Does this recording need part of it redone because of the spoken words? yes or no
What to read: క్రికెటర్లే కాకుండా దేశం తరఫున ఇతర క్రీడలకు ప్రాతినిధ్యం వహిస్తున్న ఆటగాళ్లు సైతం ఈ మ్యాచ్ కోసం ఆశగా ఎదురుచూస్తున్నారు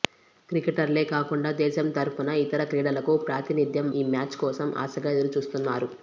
yes